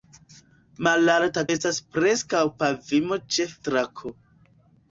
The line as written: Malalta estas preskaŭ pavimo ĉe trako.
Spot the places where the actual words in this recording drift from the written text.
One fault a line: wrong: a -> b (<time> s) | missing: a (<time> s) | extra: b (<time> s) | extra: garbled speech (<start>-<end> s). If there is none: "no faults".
no faults